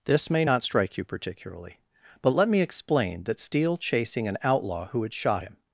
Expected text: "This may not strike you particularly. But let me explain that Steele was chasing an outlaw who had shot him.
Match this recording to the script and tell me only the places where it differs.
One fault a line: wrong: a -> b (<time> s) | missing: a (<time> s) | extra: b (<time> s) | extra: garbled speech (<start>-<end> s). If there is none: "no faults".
missing: was (3.8 s)